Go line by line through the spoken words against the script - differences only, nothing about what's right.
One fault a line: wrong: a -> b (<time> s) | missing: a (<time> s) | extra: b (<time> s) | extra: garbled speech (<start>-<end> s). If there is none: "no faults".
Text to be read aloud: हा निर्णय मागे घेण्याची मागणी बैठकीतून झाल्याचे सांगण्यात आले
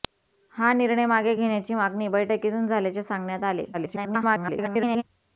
extra: garbled speech (3.7-5.0 s)